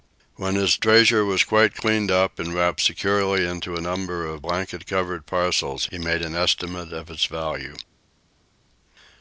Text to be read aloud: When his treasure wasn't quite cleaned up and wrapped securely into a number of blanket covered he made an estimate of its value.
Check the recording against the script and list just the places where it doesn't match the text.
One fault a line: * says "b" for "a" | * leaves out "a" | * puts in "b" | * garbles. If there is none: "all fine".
* says "was" for "wasn't"
* puts in "parcels"